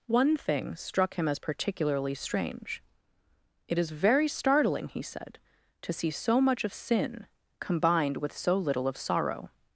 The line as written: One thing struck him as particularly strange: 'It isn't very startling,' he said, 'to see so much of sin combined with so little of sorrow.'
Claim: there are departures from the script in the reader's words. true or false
true